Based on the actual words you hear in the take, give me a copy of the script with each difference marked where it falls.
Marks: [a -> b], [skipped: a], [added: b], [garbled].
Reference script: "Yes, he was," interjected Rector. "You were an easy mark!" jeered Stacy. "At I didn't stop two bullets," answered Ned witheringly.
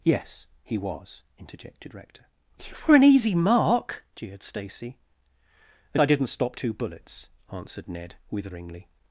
"Yes, he was," interjected Rector. "You were an easy mark!" jeered Stacy. "At I didn't stop two bullets," answered Ned witheringly.